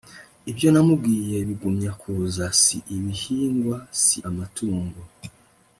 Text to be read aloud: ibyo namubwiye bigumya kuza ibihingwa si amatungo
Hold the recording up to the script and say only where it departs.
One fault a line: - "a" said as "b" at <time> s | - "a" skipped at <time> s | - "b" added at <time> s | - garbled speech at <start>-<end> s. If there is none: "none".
- "si" added at 2.6 s